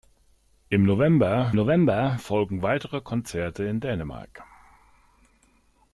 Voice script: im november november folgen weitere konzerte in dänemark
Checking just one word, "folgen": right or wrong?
right